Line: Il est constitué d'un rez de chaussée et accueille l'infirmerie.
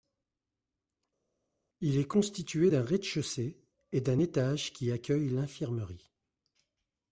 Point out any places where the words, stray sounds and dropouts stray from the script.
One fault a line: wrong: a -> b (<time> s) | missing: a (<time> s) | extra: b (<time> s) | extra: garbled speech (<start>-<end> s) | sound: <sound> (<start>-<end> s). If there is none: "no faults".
extra: d'un étage qui (4.0 s)